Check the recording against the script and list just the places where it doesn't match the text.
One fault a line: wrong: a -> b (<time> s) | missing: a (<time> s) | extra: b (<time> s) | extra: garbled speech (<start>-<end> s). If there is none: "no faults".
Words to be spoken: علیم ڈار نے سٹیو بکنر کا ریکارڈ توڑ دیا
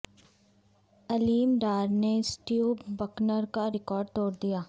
no faults